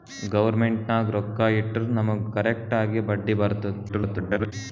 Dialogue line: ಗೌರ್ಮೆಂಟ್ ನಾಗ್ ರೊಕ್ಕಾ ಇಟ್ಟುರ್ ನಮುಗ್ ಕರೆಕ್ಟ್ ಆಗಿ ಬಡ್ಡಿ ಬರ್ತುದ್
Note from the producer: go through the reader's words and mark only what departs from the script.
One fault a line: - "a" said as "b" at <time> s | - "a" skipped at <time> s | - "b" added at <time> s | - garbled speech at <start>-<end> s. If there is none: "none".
- garbled speech at 3.9-4.5 s